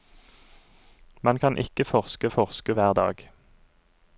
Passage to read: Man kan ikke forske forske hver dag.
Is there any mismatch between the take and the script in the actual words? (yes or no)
no